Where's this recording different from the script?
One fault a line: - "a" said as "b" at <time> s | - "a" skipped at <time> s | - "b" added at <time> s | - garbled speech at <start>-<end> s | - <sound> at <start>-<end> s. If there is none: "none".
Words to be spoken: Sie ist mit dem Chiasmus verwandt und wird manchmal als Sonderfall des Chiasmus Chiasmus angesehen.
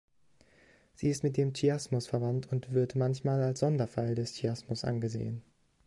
- "Chiasmus" skipped at 4.8 s